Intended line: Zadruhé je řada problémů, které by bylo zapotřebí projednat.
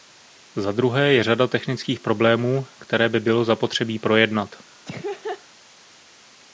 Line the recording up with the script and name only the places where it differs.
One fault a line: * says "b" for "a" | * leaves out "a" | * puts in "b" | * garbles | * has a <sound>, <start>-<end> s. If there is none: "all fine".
* puts in "technických"
* has a laugh, 4.9-5.4 s